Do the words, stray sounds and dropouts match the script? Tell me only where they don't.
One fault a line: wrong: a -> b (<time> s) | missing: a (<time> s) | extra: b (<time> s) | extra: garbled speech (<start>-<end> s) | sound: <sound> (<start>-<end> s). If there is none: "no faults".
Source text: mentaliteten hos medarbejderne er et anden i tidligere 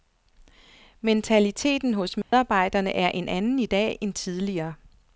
sound: dropout (2.2-2.3 s)
wrong: et -> en (3.1 s)
extra: dag end (3.6 s)